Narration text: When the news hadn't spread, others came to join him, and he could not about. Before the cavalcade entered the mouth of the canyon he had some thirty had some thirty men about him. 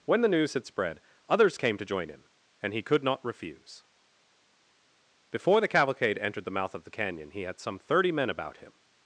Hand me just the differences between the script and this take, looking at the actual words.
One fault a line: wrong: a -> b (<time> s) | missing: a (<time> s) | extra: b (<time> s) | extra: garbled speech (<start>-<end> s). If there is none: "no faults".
wrong: hadn't -> had (0.5 s)
wrong: about -> refuse (3.2 s)
missing: had some thirty (8.1 s)